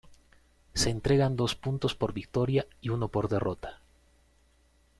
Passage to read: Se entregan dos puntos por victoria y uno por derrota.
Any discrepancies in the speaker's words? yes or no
no